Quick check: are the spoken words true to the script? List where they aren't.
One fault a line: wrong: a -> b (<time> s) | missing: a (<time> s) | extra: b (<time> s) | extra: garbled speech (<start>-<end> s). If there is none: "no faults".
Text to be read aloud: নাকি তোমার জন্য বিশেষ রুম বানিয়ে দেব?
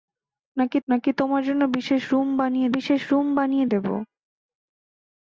extra: নাকি (0.9 s)
extra: বিশেষ রুম বানিয়ে (2.8 s)